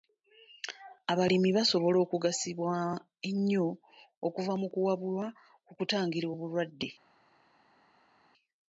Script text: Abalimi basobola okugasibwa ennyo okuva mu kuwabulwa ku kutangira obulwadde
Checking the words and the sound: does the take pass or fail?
pass